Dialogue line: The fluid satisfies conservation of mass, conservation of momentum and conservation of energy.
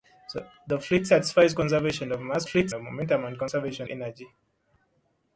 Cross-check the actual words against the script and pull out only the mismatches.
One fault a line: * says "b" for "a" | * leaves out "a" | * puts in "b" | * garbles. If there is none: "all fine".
* says "fluid" for "conservation"
* leaves out "of"